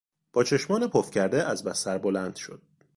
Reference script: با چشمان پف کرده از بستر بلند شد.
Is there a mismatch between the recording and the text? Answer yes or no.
no